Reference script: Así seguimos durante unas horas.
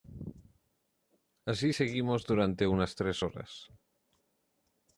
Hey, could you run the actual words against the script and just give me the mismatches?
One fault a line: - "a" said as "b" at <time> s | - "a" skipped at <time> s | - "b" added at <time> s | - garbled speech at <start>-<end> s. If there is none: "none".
- "tres" added at 2.9 s